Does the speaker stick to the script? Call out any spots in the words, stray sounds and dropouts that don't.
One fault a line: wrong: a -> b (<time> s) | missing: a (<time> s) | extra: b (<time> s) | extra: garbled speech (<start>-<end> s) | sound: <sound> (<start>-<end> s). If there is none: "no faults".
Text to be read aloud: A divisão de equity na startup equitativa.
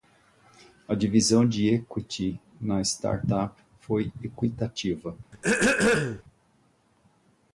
extra: foi (3.8 s)
sound: throat clearing (5.3-6.2 s)